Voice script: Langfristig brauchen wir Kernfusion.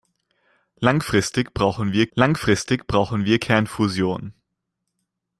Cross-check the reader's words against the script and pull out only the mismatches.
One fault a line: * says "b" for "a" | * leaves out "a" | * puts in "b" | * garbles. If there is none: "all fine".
* puts in "langfristig brauchen wir"